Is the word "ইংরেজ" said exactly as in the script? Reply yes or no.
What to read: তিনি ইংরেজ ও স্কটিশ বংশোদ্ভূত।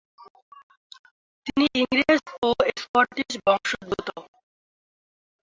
yes